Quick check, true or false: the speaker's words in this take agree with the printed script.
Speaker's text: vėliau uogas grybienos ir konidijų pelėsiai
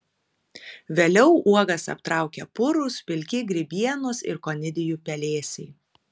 false